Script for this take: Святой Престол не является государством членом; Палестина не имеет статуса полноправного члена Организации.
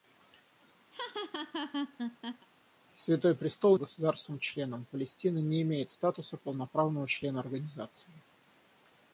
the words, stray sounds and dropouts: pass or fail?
fail